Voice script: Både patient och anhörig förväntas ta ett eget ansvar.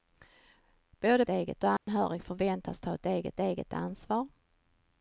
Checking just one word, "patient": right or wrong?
wrong